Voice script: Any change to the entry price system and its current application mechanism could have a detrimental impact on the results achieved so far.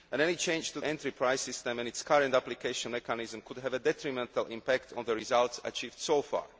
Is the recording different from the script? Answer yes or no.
yes